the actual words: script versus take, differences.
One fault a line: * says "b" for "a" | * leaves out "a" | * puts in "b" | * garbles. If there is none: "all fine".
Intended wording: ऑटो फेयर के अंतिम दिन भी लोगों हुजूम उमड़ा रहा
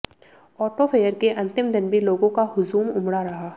* puts in "का"